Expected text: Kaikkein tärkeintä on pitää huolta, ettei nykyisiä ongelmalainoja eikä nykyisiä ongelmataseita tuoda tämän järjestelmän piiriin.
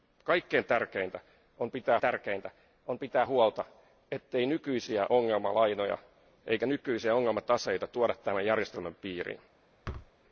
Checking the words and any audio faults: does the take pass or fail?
fail